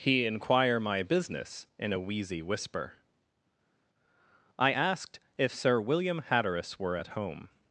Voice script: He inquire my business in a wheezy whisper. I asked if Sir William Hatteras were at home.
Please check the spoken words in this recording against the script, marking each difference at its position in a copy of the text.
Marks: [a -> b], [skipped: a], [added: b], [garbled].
He inquire my business in a wheezy whisper. I asked if Sir William Hatteras were at home.